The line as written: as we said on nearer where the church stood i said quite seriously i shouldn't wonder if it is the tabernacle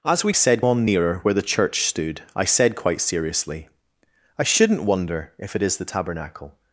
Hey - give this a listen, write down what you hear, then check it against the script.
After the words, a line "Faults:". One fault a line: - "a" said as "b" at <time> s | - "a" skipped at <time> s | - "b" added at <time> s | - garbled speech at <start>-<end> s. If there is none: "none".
as we said on nearer where the church stood i said quite seriously i shouldn't wonder if it is the tabernacle
Faults:
none